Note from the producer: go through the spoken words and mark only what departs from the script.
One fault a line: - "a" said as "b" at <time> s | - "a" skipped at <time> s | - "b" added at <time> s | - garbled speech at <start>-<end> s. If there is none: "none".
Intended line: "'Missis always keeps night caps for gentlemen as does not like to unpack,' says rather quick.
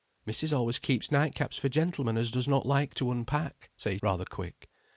none